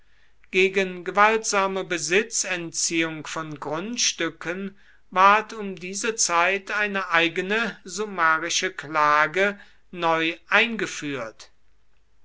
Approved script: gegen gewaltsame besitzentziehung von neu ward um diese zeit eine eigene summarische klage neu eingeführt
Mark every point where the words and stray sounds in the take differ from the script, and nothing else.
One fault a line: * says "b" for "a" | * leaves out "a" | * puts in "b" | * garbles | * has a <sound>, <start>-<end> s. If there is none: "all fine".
* says "grundstücken" for "neu"